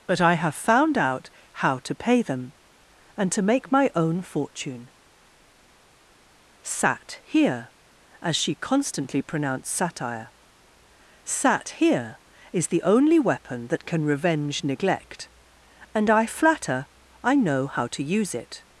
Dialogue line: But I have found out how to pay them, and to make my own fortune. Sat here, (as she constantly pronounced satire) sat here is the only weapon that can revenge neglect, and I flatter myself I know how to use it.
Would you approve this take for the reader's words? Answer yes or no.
no